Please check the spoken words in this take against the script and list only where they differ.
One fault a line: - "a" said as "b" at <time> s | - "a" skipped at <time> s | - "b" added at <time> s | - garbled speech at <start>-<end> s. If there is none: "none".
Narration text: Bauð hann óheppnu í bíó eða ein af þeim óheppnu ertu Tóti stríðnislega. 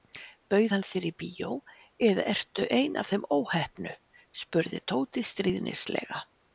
- "óheppnu" said as "þér" at 0.9 s
- "ertu" added at 2.3 s
- "ertu" said as "spurði" at 4.4 s